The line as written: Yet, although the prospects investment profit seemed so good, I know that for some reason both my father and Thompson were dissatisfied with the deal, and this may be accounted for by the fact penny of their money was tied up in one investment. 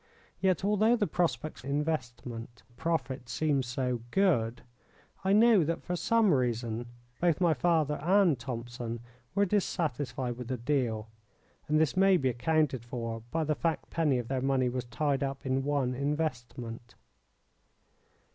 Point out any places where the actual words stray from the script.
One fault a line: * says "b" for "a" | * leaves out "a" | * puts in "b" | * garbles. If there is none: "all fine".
all fine